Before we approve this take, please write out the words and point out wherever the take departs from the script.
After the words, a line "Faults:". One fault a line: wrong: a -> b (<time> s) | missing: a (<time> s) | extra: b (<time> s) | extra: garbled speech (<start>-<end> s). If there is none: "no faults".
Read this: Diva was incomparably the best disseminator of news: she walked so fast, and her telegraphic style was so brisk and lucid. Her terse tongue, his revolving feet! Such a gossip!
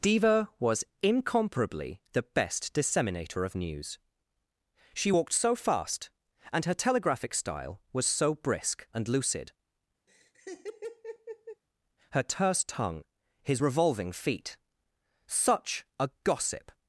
Diva was incomparably the best disseminator of news: she walked so fast, and her telegraphic style was so brisk and lucid. Her terse tongue, his revolving feet! Such a gossip!
Faults:
no faults